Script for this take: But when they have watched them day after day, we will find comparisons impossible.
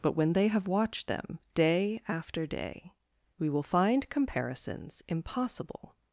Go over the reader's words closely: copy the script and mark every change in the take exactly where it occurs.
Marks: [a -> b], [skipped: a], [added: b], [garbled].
But when they have watched them day after day, we will find comparisons impossible.